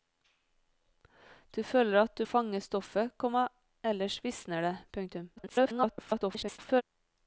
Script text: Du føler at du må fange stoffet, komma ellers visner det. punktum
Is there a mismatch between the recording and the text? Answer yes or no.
yes